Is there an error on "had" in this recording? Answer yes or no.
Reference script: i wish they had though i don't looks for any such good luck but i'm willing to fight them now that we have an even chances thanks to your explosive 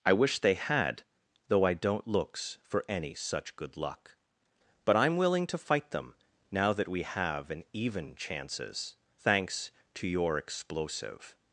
no